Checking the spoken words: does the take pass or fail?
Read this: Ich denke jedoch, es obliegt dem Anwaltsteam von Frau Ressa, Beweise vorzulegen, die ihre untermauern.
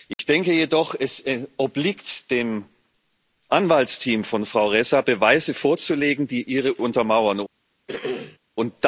pass